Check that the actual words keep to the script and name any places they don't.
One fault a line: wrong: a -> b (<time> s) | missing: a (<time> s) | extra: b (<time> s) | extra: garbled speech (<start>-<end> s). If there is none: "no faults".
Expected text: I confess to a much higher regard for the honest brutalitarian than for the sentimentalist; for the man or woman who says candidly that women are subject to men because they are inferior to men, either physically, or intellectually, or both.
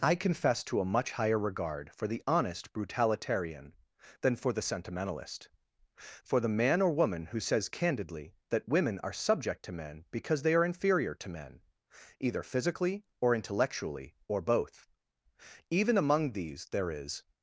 extra: Even among these there is (15.7 s)